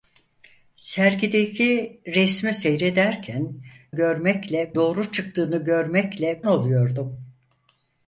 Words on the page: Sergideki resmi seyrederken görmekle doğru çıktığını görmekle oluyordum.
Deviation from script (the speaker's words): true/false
false